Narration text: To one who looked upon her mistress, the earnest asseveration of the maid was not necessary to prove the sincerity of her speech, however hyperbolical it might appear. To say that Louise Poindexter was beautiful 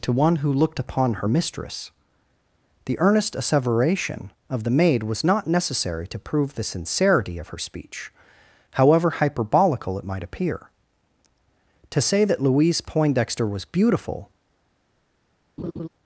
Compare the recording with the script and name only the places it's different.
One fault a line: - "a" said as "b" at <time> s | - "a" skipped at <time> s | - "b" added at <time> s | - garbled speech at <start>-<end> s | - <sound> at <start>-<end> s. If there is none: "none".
- laugh at 15.6-15.9 s